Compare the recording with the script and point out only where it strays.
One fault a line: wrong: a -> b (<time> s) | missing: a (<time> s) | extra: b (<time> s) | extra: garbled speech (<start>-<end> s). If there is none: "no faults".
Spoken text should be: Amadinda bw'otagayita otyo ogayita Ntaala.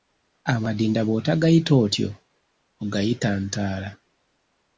no faults